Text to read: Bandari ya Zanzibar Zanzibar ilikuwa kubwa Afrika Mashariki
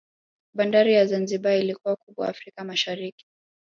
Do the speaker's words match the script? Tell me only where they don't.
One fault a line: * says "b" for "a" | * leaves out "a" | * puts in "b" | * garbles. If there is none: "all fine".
* leaves out "Zanzibar"